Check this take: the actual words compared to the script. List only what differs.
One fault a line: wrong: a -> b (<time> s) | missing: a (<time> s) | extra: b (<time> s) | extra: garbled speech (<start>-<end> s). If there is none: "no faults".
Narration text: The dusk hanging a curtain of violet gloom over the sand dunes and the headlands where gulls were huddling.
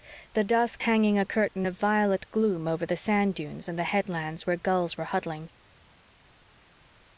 no faults